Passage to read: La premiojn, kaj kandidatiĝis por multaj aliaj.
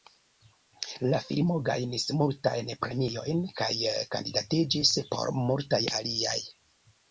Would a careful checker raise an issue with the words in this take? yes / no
yes